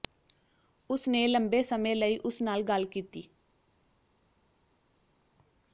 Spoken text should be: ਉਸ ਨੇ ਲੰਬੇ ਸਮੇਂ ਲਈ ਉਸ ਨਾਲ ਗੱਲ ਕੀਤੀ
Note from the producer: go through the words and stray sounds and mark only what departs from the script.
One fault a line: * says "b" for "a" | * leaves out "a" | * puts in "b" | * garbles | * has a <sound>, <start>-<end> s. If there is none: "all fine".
all fine